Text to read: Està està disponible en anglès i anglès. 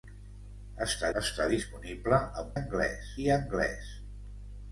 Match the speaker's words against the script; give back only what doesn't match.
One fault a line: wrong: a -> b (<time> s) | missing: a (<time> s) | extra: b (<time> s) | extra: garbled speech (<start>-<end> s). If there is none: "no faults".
no faults